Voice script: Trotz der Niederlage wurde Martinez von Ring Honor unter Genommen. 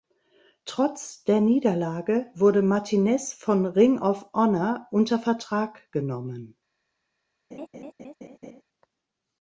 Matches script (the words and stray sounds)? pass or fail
fail